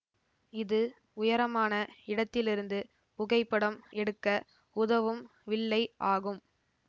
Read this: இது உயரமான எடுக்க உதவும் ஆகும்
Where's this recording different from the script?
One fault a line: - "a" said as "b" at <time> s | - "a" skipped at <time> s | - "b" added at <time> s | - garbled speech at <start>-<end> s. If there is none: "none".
- "இடத்திலிருந்து புகைப்படம்" added at 2.0 s
- "வில்லை" added at 5.5 s